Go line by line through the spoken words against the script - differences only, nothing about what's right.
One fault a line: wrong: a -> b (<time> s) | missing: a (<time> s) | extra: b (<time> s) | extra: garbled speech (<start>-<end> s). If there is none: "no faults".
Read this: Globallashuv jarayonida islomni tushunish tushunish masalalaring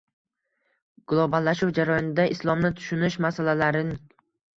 missing: tushunish (3.2 s)